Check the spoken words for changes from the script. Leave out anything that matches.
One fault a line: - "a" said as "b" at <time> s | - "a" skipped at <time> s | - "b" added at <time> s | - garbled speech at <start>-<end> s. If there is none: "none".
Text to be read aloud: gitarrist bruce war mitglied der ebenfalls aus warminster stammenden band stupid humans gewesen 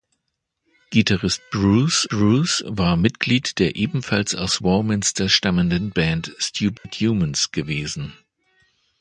- "bruce" added at 2.1 s